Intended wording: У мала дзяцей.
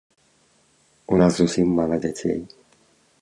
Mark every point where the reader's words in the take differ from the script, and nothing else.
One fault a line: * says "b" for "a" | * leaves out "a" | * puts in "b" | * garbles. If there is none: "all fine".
* puts in "нас зусім"